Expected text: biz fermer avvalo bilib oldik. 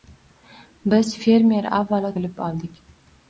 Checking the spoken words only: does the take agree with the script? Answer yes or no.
yes